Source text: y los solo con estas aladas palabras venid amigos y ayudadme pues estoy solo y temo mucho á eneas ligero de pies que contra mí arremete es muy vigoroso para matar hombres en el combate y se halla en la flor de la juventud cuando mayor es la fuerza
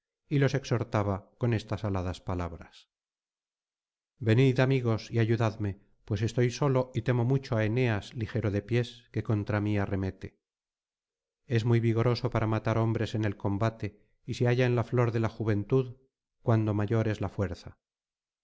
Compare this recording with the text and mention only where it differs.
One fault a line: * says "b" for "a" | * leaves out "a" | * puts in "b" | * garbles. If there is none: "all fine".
* says "exhortaba" for "solo"